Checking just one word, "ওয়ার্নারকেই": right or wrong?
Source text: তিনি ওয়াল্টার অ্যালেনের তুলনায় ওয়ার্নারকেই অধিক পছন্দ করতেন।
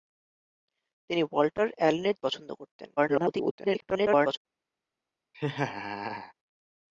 wrong